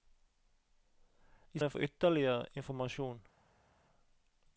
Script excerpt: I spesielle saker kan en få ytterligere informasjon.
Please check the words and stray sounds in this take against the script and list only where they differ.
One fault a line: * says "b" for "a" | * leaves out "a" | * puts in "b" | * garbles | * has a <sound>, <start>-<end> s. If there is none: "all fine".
* leaves out "spesielle saker kan"